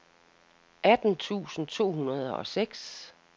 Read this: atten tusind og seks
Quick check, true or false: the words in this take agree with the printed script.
false